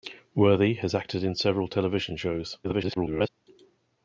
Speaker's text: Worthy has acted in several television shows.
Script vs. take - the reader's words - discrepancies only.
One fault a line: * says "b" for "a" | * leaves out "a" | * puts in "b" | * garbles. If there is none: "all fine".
* garbles